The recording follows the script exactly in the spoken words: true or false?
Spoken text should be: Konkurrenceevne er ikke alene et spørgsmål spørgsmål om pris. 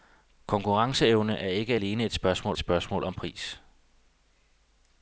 true